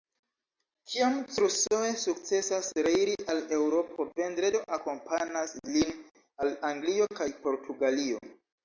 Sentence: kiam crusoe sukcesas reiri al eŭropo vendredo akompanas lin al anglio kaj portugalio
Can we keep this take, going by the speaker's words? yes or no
yes